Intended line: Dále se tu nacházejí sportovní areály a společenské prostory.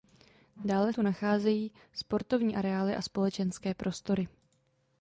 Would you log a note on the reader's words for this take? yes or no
yes